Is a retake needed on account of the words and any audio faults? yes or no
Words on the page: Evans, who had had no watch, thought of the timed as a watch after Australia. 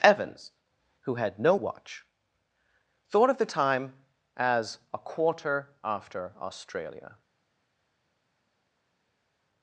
yes